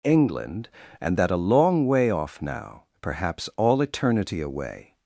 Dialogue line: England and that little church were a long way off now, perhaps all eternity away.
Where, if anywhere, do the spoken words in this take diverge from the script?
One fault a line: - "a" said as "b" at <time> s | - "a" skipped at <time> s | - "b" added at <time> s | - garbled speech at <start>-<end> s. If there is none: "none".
- "little church were" skipped at 1.3 s